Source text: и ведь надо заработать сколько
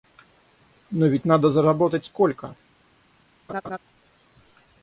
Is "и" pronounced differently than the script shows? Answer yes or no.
yes